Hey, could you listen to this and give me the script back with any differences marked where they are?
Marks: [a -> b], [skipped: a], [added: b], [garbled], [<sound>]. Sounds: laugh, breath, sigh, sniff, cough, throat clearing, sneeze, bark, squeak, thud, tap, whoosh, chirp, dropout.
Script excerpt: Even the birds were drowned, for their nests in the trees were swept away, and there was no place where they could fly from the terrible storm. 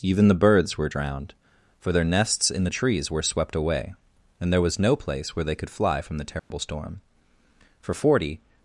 Even the birds were drowned, for their nests in the trees were swept away, and there was no place where they could fly from the terrible [dropout] storm. [added: For forty]